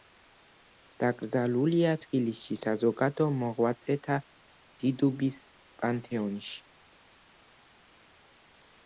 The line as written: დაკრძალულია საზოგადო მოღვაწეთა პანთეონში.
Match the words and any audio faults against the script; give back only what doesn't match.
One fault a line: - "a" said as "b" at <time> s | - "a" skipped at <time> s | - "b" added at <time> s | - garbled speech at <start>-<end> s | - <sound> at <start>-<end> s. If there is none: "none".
- "თბილისში" added at 2.0 s
- "დიდუბის" added at 4.9 s